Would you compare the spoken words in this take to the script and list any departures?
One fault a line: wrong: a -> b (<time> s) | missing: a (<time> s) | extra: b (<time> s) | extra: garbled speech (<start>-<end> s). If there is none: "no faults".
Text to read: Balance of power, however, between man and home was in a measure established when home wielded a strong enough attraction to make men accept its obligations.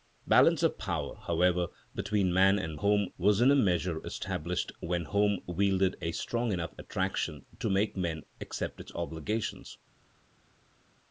no faults